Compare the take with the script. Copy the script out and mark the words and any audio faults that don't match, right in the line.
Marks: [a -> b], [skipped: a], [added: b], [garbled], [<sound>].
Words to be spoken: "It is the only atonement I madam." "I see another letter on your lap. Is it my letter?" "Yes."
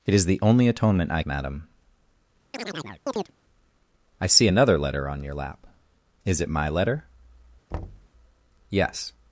"It is the only atonement I madam." [chirp] "I see another letter on your lap. Is it my letter?" [thud] "Yes."